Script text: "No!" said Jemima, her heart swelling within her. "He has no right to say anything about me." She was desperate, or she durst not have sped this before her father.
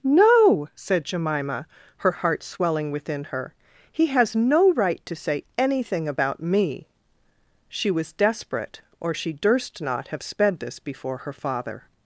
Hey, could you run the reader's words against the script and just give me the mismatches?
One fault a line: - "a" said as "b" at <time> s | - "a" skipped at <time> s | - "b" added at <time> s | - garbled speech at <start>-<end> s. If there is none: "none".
none